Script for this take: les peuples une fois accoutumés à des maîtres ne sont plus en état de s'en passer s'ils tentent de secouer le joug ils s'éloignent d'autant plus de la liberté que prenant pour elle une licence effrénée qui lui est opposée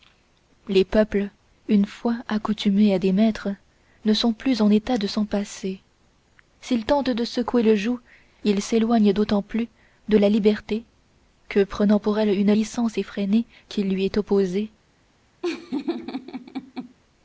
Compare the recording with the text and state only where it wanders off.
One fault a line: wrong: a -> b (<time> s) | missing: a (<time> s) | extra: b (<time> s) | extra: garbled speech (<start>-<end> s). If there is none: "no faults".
no faults